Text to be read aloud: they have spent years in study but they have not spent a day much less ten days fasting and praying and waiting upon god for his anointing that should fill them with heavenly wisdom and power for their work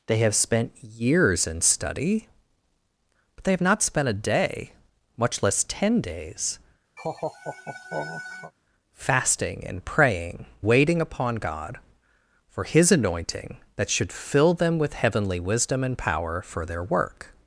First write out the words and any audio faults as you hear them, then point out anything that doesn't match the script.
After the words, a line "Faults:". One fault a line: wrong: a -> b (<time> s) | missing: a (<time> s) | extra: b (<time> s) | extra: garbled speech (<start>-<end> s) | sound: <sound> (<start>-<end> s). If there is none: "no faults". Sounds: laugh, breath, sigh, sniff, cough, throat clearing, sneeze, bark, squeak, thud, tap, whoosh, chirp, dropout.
they have spent years in study but they have not spent a day much less ten days fasting and praying waiting upon god for his anointing that should fill them with heavenly wisdom and power for their work
Faults:
sound: laugh (7.0-8.5 s)
missing: and (10.5 s)